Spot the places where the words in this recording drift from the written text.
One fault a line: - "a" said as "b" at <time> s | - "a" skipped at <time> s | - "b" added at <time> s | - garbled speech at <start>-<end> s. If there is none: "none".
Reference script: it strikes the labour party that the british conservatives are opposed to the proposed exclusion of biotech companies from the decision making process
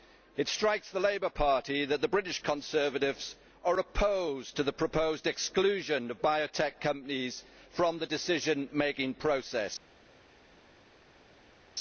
none